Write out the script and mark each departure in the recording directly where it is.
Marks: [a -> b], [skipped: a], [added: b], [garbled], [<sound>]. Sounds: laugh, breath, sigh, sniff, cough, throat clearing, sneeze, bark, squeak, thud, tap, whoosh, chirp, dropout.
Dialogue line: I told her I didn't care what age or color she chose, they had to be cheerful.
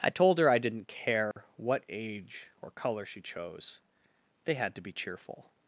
I told her I didn't care [dropout] what age or color she chose, they had to be cheerful.